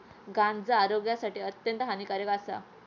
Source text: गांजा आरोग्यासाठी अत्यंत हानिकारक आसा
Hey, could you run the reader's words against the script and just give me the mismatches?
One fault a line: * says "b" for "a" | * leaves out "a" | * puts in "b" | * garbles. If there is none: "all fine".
all fine